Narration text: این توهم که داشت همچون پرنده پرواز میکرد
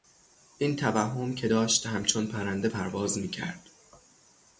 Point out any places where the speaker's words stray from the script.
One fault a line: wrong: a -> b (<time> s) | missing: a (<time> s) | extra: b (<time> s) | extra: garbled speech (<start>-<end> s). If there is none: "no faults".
no faults